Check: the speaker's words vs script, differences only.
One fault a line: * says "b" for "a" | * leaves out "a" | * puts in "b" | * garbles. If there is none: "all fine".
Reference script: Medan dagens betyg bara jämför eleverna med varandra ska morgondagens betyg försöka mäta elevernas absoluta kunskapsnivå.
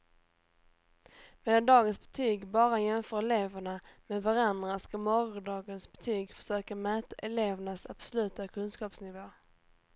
all fine